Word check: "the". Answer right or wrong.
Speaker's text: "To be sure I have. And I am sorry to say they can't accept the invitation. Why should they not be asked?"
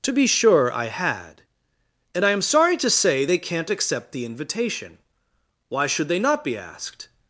right